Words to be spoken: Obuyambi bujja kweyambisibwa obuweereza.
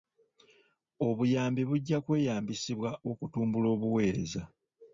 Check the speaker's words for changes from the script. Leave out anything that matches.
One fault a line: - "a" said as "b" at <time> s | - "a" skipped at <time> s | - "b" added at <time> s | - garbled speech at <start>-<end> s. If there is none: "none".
- "okutumbula" added at 3.1 s